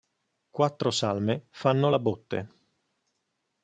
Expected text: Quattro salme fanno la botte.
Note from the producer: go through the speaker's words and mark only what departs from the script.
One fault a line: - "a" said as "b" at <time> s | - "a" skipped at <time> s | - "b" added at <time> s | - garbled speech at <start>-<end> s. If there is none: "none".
none